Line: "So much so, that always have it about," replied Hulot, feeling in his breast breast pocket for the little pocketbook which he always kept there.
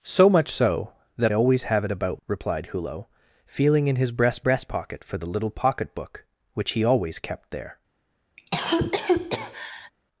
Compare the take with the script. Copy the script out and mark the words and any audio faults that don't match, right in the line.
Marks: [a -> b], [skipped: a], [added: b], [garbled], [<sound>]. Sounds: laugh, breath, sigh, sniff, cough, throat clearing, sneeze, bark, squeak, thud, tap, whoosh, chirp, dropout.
"So much so, that always have it about," replied Hulot, feeling in his breast breast pocket for the little pocketbook which he always kept there. [cough]